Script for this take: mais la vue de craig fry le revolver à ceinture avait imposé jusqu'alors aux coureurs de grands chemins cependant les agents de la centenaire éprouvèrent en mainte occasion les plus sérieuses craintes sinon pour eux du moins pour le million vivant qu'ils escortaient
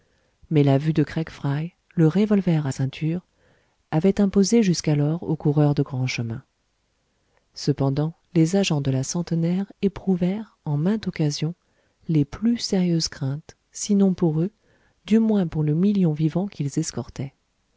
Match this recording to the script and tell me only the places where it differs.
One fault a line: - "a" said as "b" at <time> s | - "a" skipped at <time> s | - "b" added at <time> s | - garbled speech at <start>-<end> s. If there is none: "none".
none